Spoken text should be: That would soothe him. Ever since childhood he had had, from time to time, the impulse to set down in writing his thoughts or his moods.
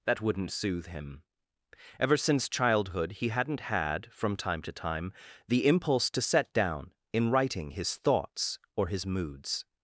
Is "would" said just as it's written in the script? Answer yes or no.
no